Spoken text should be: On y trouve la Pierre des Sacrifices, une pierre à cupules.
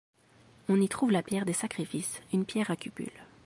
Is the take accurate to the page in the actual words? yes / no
yes